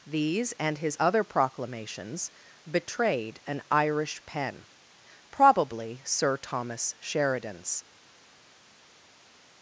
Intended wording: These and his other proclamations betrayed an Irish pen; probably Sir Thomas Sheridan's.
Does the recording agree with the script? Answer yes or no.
yes